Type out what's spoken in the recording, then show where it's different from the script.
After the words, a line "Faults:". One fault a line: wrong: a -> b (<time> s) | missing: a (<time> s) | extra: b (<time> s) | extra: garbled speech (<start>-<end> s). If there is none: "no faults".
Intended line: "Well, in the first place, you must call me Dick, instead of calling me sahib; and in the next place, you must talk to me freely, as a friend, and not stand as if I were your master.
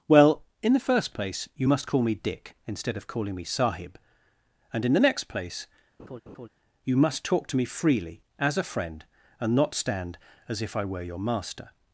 "Well, in the first place, you must call me Dick, instead of calling me sahib; and in the next place, you must talk to me freely, as a friend, and not stand as if I were your master.
Faults:
no faults